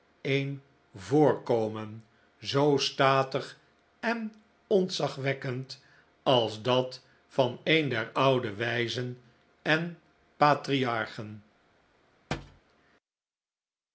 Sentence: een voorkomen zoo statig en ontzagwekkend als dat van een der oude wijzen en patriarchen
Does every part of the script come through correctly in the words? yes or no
yes